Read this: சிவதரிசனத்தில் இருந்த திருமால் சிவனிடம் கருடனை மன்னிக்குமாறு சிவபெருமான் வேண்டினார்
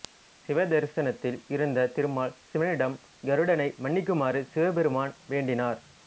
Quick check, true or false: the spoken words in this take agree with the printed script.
true